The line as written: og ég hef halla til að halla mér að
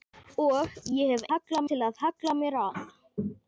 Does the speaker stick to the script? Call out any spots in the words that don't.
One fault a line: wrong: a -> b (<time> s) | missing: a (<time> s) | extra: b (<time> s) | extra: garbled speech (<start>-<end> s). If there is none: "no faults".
no faults